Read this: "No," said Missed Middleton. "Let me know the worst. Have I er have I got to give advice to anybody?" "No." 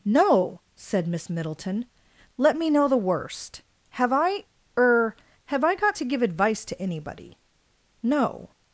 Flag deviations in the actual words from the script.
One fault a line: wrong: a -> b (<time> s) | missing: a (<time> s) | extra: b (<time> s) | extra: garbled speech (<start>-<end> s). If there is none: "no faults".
wrong: Missed -> Miss (1.1 s)